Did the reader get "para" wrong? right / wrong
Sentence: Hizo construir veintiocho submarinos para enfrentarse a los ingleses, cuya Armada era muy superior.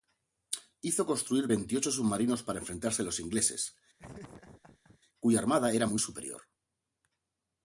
right